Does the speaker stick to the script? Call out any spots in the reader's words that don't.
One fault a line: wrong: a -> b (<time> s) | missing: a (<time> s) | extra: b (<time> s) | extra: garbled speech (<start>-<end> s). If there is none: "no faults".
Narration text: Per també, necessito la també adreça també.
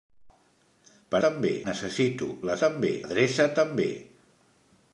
no faults